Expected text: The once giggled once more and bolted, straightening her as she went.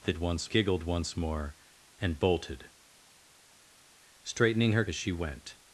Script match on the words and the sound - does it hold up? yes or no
yes